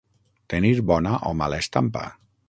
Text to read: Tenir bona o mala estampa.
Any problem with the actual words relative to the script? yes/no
no